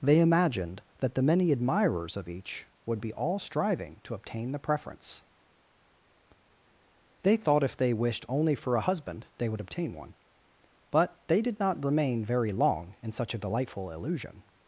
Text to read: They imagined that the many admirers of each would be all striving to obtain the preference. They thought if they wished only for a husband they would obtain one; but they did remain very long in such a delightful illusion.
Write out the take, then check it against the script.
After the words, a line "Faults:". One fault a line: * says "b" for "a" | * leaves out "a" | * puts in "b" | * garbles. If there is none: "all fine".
They imagined that the many admirers of each would be all striving to obtain the preference. They thought if they wished only for a husband they would obtain one; but they did not remain very long in such a delightful illusion.
Faults:
* puts in "not"